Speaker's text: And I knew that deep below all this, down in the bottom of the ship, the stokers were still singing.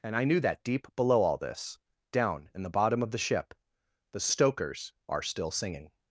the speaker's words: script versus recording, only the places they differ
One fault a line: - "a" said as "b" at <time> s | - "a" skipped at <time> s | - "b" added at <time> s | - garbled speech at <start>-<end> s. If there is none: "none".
- "were" said as "are" at 5.1 s